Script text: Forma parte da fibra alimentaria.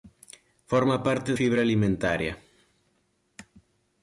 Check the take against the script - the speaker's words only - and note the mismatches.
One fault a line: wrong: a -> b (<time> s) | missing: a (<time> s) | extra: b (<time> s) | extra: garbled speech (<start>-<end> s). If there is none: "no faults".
missing: da (1.4 s)